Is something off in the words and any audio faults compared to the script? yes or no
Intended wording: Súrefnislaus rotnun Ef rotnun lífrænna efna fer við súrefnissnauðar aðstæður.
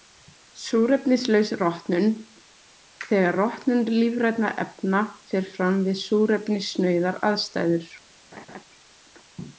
yes